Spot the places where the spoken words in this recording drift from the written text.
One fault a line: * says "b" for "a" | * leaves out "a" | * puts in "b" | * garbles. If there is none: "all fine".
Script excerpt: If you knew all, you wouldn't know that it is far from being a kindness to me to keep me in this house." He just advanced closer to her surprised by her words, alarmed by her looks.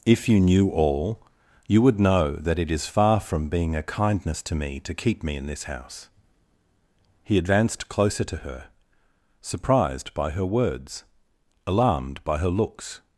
* says "would" for "wouldn't"
* leaves out "just"